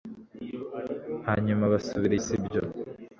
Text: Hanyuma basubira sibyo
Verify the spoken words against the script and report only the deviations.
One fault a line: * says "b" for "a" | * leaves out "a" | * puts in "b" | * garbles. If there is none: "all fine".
all fine